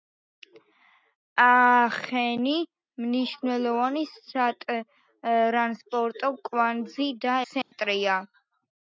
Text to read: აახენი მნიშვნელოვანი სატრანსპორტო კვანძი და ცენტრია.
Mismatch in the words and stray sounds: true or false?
true